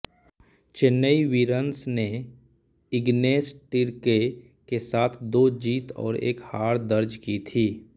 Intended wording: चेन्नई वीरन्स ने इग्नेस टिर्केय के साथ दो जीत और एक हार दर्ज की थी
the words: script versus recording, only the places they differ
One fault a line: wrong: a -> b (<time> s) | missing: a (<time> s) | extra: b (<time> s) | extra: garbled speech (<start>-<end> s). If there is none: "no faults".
no faults